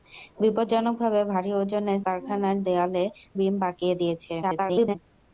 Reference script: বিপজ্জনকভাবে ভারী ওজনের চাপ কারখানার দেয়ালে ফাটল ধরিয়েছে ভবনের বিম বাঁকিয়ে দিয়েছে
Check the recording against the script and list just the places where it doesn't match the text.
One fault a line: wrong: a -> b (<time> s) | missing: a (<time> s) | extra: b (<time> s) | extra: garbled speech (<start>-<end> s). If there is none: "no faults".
missing: চাপ (2.0 s)
missing: ফাটল ধরিয়েছে ভবনের (3.0 s)
extra: garbled speech (4.4-5.0 s)